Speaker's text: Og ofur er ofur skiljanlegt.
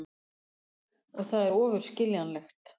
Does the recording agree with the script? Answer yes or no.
no